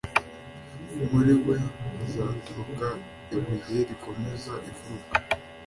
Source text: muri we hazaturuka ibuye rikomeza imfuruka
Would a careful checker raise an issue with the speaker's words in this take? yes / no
no